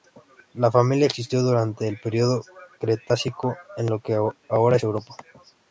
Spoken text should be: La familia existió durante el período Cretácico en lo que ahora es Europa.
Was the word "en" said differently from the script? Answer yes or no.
no